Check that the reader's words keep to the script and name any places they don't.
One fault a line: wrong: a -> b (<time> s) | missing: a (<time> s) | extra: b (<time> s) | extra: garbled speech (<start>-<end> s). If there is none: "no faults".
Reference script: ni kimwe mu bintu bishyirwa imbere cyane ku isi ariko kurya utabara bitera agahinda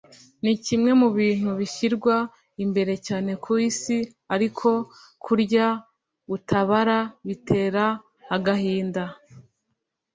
no faults